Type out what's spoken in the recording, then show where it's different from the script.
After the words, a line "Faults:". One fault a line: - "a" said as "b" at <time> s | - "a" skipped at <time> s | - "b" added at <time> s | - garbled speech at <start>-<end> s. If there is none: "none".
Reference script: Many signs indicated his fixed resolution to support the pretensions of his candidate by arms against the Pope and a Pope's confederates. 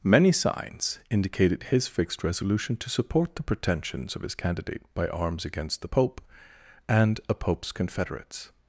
Many signs indicated his fixed resolution to support the pretensions of his candidate by arms against the Pope and a Pope's confederates.
Faults:
none